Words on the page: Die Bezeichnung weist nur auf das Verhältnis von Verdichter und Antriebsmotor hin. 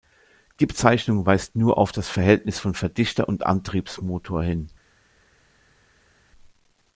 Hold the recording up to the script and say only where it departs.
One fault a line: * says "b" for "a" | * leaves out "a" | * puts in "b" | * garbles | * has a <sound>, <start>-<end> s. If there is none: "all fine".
all fine